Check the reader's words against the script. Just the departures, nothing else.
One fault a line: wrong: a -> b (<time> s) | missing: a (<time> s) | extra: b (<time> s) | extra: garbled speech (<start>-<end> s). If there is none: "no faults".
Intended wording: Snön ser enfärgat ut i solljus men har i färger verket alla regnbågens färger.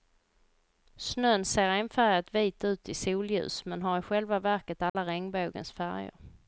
extra: vit (2.4 s)
wrong: färger -> själva (4.0 s)